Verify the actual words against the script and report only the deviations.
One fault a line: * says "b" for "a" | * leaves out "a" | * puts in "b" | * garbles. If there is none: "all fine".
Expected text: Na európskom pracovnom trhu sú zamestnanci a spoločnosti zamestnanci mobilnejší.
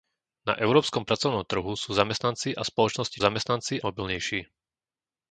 all fine